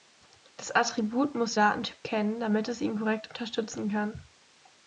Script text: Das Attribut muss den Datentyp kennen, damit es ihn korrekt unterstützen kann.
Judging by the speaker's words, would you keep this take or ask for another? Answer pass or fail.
fail